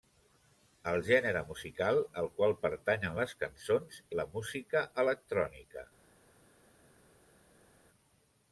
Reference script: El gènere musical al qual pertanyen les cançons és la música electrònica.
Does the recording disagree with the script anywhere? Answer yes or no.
yes